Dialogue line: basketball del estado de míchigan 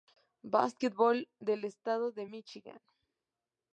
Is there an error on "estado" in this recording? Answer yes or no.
no